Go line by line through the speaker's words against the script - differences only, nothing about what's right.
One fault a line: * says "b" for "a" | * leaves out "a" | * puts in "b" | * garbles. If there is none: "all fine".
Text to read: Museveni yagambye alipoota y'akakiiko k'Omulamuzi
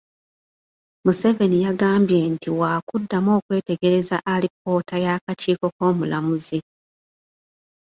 * puts in "nti waakuddamu okwetegereza"